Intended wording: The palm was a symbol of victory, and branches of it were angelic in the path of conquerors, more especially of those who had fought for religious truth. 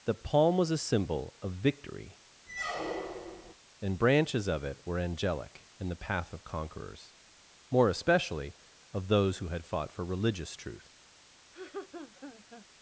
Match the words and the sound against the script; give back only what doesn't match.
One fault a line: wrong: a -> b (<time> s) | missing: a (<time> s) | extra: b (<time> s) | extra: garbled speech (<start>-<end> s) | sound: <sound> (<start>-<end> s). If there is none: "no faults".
sound: squeak (2.5-3.5 s)
sound: laugh (11.5-12.7 s)